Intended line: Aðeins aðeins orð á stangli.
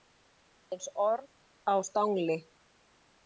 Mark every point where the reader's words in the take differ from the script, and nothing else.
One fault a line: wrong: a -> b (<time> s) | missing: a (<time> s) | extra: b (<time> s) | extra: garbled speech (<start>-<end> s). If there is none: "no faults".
missing: aðeins (0.9 s)